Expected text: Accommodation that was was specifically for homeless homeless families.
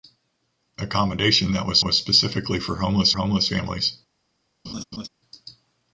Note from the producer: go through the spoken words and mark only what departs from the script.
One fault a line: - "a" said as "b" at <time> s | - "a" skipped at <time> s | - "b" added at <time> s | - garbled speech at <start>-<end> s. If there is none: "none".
none